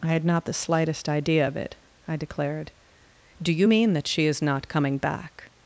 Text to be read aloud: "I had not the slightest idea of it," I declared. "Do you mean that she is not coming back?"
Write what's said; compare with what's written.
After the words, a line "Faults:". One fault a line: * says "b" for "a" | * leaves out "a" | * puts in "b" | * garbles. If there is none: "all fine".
"I had not the slightest idea of it," I declared. "Do you mean that she is not coming back?"
Faults:
all fine